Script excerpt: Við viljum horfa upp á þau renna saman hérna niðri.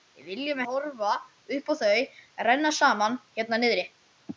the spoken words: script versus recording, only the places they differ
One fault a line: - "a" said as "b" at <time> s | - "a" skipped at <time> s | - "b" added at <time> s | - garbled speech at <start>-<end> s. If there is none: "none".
none